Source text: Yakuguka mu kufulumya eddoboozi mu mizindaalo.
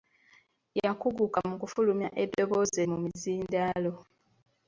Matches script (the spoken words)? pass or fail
pass